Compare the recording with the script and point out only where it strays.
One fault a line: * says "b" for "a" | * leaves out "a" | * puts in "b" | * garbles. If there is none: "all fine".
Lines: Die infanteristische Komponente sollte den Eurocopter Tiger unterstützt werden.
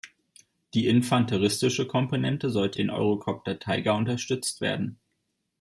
all fine